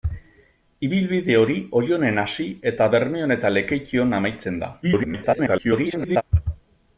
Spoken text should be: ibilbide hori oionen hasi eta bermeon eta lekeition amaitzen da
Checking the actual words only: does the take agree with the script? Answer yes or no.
no